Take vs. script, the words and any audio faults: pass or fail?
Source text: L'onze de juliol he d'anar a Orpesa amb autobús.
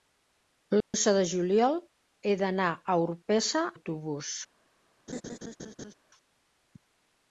fail